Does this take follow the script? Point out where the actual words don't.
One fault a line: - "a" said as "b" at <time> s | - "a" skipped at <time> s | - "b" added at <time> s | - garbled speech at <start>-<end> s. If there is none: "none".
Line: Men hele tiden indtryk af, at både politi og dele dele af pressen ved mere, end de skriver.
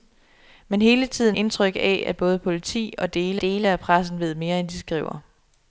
none